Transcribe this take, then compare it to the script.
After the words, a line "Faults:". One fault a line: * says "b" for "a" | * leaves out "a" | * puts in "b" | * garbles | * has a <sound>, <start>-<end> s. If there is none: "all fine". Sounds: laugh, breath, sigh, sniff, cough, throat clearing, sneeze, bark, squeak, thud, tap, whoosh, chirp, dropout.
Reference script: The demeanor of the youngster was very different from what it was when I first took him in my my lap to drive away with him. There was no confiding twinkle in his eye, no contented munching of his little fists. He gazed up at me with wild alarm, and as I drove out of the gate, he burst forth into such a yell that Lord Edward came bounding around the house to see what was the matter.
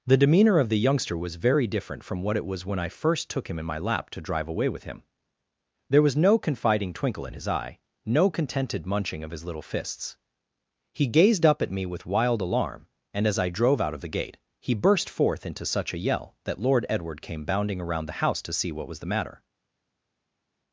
The demeanor of the youngster was very different from what it was when I first took him in my lap to drive away with him. There was no confiding twinkle in his eye, no contented munching of his little fists. He gazed up at me with wild alarm, and as I drove out of the gate, he burst forth into such a yell that Lord Edward came bounding around the house to see what was the matter.
Faults:
* leaves out "my"